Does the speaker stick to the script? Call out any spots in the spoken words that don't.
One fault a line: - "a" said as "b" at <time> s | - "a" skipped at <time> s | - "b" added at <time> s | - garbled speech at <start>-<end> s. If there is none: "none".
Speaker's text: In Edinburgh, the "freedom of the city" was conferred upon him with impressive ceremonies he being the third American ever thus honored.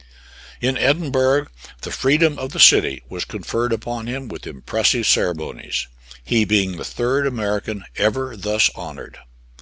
none